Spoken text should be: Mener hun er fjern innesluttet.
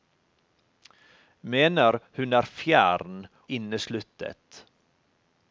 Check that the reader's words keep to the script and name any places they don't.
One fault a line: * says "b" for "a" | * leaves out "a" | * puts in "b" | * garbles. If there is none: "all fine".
all fine